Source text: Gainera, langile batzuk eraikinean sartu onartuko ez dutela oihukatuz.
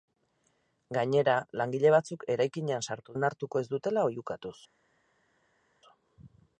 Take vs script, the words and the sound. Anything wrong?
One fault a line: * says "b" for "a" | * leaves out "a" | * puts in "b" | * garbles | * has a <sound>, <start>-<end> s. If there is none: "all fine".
all fine